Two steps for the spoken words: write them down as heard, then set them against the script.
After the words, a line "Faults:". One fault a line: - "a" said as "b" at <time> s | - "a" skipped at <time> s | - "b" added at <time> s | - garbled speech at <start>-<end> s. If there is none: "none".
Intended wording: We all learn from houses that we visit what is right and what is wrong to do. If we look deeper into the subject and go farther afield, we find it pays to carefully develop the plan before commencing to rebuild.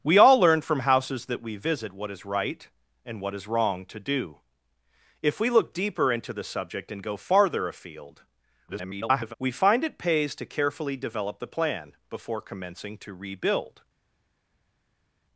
We all learn from houses that we visit what is right and what is wrong to do. If we look deeper into the subject and go farther afield, [garbled] we find it pays to carefully develop the plan before commencing to rebuild.
Faults:
- garbled speech at 8.7-9.3 s